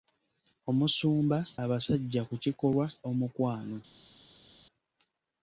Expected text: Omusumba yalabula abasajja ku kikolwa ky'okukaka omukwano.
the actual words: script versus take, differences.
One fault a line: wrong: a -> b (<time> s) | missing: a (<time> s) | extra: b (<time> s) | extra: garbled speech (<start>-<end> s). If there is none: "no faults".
missing: yalabula (1.4 s)
missing: ky'okukaka (2.9 s)